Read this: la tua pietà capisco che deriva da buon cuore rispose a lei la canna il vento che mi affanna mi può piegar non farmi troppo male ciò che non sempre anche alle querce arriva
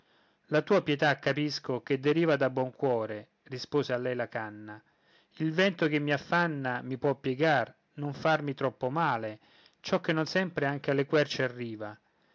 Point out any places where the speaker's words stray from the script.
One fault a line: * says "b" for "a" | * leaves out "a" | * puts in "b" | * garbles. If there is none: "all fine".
all fine